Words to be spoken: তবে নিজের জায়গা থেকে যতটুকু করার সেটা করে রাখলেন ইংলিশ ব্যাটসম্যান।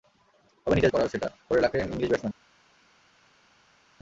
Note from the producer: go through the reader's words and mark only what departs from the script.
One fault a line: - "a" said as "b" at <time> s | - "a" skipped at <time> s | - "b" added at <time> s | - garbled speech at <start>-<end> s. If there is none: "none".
- "জায়গা থেকে যতটুকু" skipped at 0.9 s